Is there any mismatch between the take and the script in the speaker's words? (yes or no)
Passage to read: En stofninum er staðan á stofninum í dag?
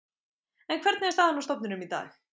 yes